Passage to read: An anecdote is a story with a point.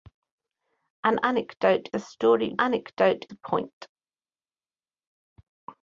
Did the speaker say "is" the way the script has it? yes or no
no